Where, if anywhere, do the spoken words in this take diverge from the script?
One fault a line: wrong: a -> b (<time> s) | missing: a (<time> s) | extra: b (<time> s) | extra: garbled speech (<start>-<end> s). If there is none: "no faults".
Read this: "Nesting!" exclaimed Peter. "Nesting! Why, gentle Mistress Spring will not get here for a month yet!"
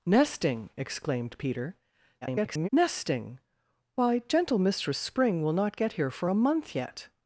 extra: garbled speech (2.2-2.7 s)